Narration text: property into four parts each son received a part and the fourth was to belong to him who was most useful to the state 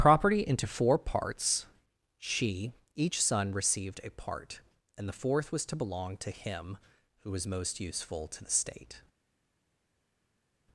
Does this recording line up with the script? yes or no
no